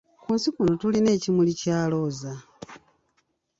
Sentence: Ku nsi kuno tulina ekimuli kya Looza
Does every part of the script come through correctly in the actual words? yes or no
yes